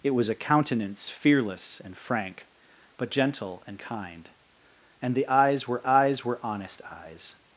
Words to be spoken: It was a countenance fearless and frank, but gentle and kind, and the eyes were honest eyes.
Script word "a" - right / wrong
right